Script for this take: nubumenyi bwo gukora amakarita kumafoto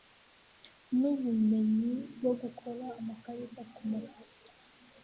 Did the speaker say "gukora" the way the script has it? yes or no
yes